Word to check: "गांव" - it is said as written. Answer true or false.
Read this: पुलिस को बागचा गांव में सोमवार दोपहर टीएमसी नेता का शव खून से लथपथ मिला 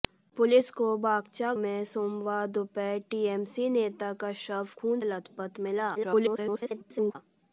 false